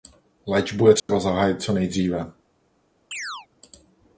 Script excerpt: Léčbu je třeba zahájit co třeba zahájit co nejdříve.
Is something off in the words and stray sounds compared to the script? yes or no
yes